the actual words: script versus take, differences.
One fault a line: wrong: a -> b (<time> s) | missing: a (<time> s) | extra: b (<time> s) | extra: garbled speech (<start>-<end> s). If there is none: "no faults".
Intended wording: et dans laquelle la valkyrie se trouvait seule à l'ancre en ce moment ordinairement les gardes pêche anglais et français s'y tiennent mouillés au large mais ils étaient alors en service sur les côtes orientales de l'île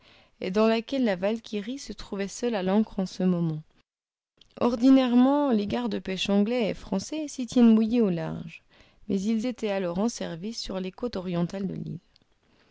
no faults